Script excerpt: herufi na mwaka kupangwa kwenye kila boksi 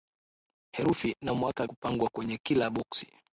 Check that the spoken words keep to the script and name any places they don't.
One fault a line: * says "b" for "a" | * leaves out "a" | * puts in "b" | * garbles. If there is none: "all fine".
all fine